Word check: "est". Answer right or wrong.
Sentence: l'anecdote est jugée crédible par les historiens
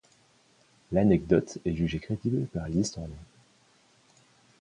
right